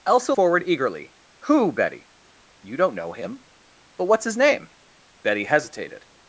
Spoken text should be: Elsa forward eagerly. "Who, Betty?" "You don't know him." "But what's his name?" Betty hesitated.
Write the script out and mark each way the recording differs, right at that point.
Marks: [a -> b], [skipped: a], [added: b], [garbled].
Elsa forward eagerly. "Who, Betty?" "You don't know him." "But what's his name?" Betty hesitated.